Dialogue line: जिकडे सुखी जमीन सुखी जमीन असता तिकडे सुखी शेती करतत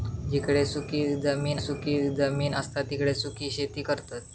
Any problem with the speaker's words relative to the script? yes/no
no